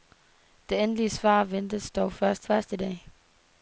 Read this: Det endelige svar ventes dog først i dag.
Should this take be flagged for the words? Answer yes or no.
yes